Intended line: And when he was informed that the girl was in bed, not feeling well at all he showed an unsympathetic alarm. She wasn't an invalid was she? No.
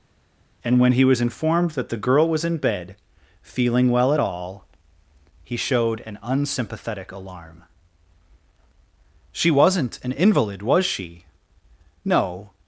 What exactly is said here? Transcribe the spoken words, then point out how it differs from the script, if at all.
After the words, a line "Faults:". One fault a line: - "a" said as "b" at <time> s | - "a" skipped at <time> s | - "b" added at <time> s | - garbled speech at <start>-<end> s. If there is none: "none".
And when he was informed that the girl was in bed, feeling well at all he showed an unsympathetic alarm. She wasn't an invalid was she? No.
Faults:
- "not" skipped at 2.9 s